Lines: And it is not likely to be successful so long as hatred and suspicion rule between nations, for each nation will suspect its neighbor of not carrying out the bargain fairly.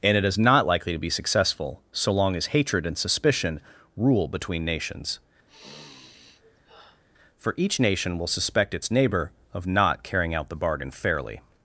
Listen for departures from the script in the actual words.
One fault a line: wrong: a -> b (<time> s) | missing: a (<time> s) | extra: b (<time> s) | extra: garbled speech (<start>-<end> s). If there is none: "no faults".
no faults